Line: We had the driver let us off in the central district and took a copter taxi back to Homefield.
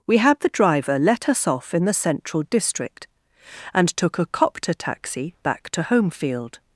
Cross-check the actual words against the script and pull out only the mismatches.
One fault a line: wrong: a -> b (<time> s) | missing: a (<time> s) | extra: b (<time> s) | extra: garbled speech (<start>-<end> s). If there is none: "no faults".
no faults